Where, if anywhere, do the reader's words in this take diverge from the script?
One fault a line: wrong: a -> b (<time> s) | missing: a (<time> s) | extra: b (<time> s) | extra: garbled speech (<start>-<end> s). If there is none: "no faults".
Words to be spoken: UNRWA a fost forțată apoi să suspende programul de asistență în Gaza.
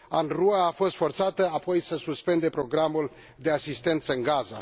no faults